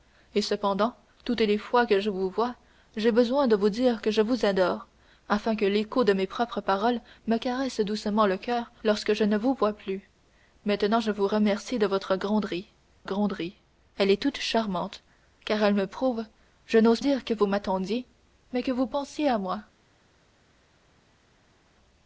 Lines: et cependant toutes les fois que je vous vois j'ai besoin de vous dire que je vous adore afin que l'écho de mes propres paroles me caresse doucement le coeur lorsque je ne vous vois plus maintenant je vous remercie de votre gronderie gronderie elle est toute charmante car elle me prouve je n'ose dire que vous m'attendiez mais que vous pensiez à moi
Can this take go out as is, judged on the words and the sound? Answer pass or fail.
pass